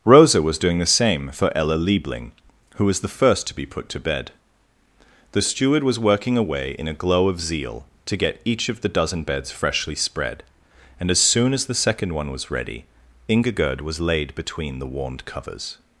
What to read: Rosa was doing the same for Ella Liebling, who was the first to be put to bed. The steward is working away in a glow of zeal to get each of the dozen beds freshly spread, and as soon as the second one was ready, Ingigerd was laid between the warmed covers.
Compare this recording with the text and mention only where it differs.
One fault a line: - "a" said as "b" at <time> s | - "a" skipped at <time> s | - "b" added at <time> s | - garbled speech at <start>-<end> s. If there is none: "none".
- "is" said as "was" at 5.8 s